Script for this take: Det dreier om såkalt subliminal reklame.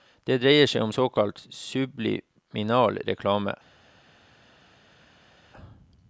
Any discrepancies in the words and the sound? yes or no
yes